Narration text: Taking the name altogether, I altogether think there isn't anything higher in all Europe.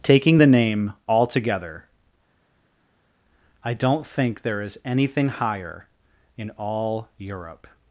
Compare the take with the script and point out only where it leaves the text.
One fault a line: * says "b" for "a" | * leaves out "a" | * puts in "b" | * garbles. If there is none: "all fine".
* says "don't" for "altogether"
* says "is" for "isn't"